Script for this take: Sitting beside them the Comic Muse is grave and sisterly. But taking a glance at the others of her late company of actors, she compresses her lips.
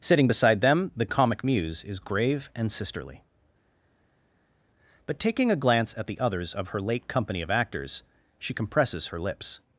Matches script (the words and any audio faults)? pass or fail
pass